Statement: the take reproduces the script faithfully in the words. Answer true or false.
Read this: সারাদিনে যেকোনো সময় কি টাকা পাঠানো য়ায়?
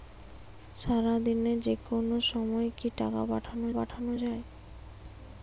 false